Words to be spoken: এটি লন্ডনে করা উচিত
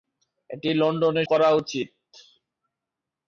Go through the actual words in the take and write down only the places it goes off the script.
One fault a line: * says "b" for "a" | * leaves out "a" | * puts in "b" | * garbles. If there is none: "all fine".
all fine